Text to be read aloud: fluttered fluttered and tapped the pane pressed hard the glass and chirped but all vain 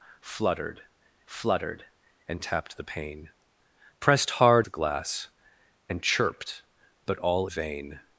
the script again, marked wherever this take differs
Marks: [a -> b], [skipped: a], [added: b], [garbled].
fluttered fluttered and tapped the pane pressed hard the glass and chirped but all vain